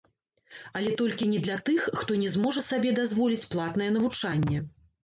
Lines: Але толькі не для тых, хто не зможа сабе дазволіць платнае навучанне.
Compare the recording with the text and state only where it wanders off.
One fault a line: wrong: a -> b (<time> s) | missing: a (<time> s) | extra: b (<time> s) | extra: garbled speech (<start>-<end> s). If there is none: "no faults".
no faults